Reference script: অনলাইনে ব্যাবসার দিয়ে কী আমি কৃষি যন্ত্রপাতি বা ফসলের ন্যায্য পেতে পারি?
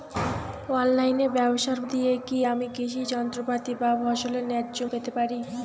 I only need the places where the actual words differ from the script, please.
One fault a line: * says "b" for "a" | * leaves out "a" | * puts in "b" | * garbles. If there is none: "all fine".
all fine